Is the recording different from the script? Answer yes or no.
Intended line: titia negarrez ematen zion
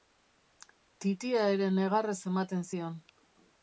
yes